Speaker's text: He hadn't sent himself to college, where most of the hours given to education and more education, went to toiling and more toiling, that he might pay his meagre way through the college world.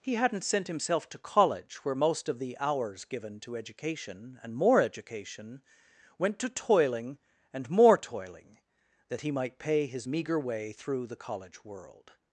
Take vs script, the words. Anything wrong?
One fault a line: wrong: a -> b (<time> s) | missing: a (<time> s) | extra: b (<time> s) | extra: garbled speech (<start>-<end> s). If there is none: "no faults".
no faults